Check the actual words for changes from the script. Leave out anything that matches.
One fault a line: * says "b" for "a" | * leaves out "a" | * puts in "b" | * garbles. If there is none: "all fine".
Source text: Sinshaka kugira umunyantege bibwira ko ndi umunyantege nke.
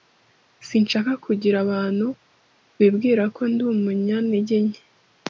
* says "abantu" for "umunyantege"